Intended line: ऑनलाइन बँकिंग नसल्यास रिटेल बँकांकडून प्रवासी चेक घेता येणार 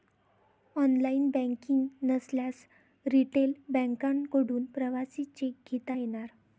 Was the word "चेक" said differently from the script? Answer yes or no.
no